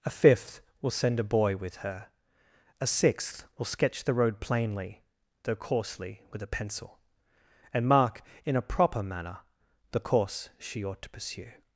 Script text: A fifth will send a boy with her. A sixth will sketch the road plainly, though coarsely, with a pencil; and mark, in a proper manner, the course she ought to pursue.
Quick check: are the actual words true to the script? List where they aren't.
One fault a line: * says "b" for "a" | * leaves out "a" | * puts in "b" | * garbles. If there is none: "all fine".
all fine